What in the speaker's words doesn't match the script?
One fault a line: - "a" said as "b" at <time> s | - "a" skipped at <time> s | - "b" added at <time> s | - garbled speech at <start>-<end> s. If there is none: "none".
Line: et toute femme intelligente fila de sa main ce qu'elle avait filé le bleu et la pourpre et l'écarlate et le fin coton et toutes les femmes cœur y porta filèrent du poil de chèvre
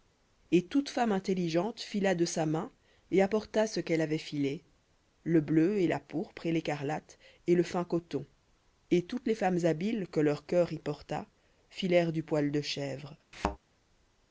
- "et apporta" added at 3.1 s
- "habiles que leur" added at 9.6 s